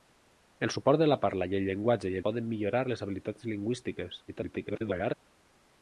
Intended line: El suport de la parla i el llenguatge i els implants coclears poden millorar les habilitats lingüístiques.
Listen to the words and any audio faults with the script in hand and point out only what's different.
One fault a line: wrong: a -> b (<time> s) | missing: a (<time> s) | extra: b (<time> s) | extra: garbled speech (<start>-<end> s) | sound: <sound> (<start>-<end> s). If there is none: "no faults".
missing: els implants coclears (2.2 s)
extra: garbled speech (4.3-5.1 s)